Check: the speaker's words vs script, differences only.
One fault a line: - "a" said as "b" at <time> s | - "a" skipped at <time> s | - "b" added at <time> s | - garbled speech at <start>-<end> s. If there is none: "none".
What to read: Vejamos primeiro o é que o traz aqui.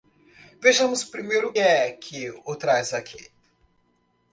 none